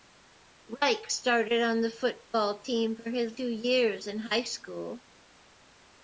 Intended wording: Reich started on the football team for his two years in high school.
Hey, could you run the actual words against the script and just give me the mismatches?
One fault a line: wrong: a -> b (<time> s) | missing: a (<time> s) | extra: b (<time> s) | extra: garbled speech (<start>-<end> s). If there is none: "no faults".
no faults